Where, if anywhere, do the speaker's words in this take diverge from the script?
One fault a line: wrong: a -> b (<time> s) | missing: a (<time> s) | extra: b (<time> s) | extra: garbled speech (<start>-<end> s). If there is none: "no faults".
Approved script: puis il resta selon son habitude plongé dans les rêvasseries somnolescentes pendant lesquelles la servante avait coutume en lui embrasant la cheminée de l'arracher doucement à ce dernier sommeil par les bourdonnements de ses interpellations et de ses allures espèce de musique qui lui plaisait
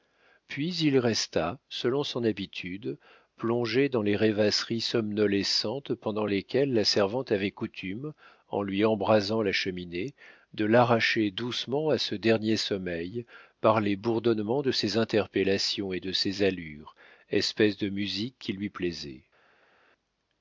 no faults